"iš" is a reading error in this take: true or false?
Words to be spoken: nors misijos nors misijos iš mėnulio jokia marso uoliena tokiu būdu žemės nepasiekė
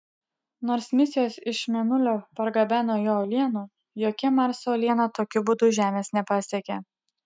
true